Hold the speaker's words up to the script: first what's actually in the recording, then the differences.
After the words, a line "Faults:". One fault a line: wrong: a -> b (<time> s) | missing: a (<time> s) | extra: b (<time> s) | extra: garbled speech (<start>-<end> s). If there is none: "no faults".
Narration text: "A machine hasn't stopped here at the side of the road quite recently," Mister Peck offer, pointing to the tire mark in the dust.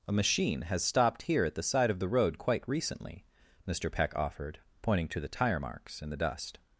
"A machine has stopped here at the side of the road quite recently," Mister Peck offered, pointing to the tire marks in the dust.
Faults:
wrong: hasn't -> has (0.6 s)
wrong: offer -> offered (4.1 s)
wrong: mark -> marks (5.6 s)